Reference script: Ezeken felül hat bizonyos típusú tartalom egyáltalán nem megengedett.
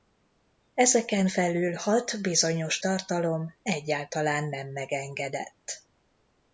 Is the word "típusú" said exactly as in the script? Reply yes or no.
no